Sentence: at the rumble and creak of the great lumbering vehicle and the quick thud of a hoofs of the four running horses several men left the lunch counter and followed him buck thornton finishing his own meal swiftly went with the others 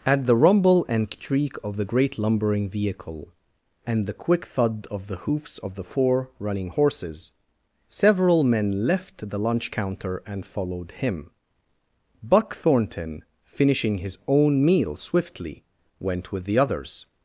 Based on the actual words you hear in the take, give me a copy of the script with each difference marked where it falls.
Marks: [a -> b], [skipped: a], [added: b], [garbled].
at the rumble and creak of the great lumbering vehicle and the quick thud of [a -> the] hoofs of the four running horses several men left the lunch counter and followed him buck thornton finishing his own meal swiftly went with the others